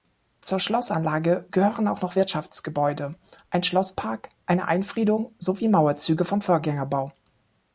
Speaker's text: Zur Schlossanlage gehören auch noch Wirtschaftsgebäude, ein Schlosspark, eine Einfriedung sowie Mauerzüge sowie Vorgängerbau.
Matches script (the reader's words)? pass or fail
fail